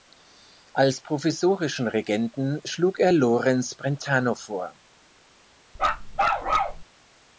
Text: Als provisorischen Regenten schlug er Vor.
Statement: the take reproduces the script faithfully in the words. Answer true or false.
false